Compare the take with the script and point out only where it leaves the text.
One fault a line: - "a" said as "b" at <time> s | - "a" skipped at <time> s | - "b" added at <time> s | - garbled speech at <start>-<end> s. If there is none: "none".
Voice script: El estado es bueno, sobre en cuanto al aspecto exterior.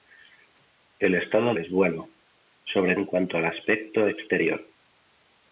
none